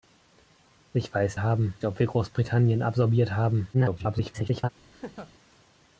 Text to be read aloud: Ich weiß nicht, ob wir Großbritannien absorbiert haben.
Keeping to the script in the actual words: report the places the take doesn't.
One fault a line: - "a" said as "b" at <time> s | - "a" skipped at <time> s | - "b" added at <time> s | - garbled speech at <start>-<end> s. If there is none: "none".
- "nicht" said as "haben" at 1.4 s
- garbled speech at 3.7-4.7 s